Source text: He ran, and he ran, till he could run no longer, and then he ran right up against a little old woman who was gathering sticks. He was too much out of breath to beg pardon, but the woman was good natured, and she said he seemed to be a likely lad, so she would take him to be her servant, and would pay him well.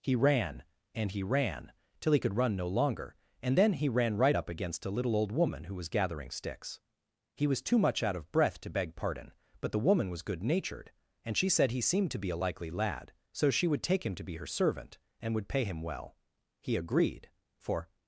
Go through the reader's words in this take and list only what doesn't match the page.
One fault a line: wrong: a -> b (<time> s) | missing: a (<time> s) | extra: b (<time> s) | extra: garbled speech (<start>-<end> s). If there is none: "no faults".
extra: He agreed for (16.6 s)